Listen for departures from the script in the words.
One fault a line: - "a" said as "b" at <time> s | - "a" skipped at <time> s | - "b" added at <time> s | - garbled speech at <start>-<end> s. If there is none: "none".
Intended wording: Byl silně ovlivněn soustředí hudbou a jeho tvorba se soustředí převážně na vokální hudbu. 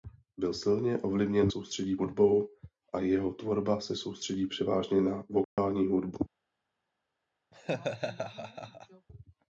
none